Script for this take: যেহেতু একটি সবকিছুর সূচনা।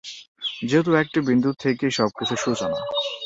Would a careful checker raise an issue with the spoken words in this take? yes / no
yes